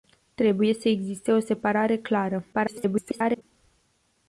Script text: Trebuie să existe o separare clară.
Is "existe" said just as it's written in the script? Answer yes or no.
yes